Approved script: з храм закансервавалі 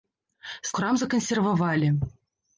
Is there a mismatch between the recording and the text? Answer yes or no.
no